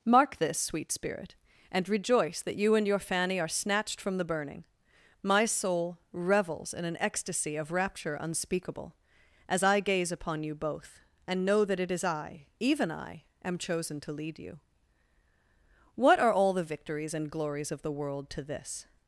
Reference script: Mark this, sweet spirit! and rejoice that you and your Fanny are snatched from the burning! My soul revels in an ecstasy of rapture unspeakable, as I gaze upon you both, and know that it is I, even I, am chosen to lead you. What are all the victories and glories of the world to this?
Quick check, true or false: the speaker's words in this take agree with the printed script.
true